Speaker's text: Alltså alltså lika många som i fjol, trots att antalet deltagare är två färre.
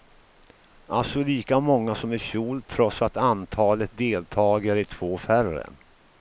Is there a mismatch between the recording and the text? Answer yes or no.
yes